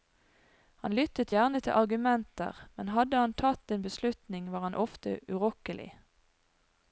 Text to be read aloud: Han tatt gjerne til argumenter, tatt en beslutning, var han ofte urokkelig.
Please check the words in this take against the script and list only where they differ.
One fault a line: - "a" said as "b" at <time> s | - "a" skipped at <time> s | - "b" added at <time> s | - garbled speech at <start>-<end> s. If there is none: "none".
- "tatt" said as "lyttet" at 1.0 s
- "men hadde han" added at 2.8 s